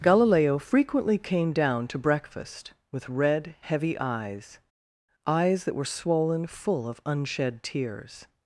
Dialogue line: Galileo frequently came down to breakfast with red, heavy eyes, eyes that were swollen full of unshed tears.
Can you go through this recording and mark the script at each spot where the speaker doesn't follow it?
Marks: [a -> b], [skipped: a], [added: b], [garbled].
Galileo frequently came down to breakfast with red, heavy eyes, eyes that were swollen full of unshed tears.